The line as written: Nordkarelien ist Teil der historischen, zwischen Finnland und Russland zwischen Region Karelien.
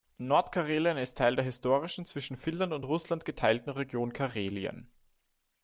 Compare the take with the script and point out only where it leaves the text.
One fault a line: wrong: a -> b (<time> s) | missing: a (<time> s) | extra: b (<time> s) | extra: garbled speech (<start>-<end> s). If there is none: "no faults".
wrong: zwischen -> geteilten (3.2 s)